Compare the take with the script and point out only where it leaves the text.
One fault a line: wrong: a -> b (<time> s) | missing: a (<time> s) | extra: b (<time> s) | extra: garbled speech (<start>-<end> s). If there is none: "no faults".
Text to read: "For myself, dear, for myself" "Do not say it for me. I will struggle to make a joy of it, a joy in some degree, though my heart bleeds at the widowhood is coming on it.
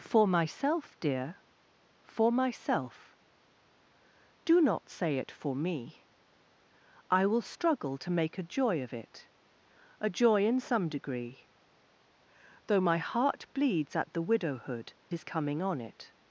no faults